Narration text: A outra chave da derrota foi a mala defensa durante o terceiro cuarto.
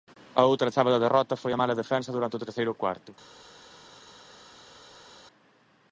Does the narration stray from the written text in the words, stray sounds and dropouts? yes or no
no